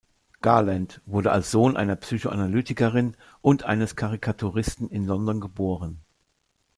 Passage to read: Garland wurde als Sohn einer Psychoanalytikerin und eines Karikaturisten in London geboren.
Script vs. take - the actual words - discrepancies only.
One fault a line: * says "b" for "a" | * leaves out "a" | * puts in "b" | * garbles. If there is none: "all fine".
all fine